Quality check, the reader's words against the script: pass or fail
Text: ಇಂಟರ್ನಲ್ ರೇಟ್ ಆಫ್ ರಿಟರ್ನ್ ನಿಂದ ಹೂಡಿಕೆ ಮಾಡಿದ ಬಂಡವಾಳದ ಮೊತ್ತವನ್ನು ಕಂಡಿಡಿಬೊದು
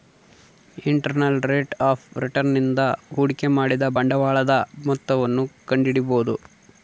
pass